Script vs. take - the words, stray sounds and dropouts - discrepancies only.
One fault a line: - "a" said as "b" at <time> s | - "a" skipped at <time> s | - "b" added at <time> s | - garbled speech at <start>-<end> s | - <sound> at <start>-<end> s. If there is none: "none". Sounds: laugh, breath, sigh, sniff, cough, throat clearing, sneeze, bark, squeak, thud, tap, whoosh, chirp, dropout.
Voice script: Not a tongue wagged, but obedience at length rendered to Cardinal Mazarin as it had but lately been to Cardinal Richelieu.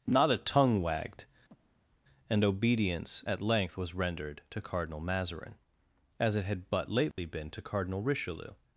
- breath at 1.5-2.0 s
- "but" said as "and" at 2.3 s
- "was" added at 3.8 s
- dropout at 7.1-7.2 s